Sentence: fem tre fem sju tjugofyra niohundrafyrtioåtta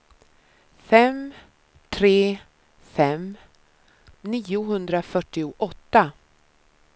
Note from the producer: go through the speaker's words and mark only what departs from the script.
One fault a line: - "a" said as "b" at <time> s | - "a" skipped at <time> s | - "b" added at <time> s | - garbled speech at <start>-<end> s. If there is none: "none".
- "sju tjugofyra" skipped at 3.3 s